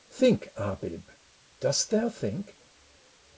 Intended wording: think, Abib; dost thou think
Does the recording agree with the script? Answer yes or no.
yes